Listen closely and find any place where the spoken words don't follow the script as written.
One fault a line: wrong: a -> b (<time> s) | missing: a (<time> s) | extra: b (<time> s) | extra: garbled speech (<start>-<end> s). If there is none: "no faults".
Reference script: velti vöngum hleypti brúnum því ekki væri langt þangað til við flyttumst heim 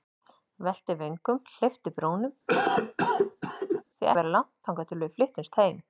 missing: ekki (4.1 s)